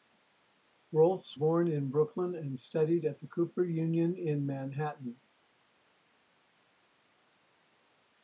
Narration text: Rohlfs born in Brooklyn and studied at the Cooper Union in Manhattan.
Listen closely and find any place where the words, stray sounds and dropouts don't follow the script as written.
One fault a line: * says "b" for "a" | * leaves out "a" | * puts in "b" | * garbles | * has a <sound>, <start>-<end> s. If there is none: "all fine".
all fine